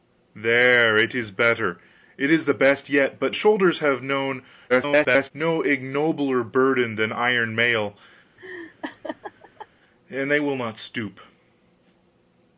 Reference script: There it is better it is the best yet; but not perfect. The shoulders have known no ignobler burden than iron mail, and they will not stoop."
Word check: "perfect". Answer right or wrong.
wrong